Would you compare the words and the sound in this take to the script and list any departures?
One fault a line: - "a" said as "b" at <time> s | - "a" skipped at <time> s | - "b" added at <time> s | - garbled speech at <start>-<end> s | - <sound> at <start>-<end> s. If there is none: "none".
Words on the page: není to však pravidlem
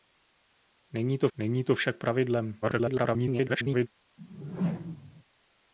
- "není to" added at 1.4 s
- garbled speech at 2.6-3.9 s
- whoosh at 4.2-5.2 s